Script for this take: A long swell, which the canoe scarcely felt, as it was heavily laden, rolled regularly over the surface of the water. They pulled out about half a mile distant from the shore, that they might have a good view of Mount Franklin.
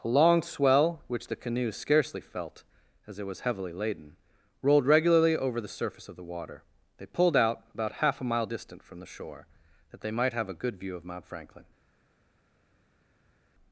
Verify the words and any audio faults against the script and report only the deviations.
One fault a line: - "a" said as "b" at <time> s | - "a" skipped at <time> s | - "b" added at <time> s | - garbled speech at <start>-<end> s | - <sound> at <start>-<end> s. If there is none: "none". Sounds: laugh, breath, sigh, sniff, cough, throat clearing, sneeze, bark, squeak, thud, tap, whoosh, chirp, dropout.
none